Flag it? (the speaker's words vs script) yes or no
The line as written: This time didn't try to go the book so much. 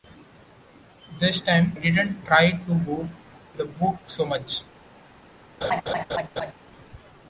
no